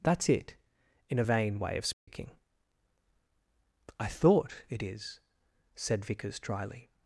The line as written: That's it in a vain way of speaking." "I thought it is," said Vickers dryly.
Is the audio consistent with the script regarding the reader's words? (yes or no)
yes